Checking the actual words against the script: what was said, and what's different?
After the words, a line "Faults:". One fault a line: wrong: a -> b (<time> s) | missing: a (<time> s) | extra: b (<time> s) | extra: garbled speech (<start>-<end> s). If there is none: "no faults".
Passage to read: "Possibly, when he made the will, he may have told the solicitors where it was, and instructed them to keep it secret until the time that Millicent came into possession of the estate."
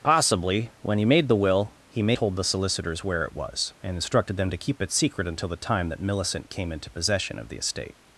"Possibly, when he made the will, he may told the solicitors where it was, and instructed them to keep it secret until the time that Millicent came into possession of the estate."
Faults:
missing: have (2.2 s)